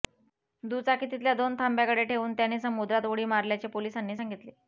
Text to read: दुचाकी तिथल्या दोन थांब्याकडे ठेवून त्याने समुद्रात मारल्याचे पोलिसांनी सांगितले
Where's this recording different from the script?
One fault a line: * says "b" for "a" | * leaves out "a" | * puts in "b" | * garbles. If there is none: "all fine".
* puts in "उडी"